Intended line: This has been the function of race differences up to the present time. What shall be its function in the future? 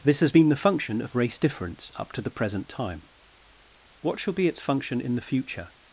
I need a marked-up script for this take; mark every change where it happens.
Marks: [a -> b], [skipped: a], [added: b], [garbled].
This has been the function of race [differences -> difference] up to the present time. What shall be its function in the future?